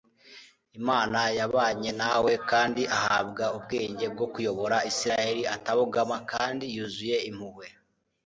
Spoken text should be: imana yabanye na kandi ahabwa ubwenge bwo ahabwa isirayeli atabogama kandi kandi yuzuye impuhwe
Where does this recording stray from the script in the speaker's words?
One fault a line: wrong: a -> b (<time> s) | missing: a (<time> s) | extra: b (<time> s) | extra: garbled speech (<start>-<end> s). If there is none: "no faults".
extra: we (2.2 s)
wrong: ahabwa -> kuyobora (4.3 s)
missing: kandi (6.6 s)